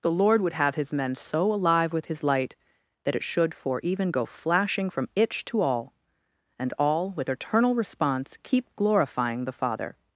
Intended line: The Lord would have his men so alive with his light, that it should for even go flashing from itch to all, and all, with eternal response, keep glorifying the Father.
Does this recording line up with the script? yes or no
yes